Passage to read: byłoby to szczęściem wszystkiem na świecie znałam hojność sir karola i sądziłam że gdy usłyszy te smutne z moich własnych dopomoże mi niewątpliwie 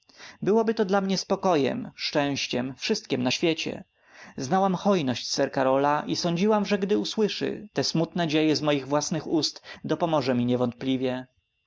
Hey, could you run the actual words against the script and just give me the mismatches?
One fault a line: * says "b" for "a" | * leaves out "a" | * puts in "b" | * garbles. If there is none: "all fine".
* puts in "dla mnie spokojem"
* puts in "dzieje"
* puts in "ust"